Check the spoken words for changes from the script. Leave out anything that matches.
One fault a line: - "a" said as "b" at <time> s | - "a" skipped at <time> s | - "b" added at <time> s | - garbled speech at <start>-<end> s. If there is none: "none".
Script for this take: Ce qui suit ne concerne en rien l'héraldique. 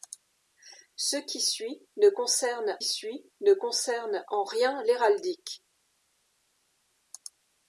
- "suit ne concerne" added at 2.8 s